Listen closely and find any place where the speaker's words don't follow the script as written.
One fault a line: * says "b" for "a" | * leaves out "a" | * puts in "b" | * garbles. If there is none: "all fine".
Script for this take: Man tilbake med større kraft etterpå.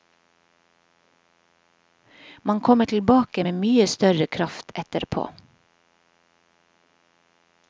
* puts in "kommer"
* puts in "mye"